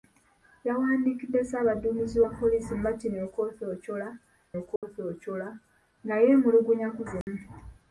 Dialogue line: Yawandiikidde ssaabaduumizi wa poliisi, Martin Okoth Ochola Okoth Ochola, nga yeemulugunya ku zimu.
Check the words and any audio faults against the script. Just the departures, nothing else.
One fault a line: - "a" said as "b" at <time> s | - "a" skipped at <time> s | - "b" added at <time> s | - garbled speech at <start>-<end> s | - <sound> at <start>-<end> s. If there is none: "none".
- dropout at 4.8-4.8 s
- dropout at 7.2-7.3 s